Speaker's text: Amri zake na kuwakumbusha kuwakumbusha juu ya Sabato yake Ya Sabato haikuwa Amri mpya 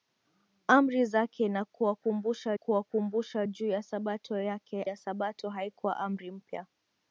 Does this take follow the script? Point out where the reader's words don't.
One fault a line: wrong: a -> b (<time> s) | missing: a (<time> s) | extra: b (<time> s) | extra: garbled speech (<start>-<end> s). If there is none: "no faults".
no faults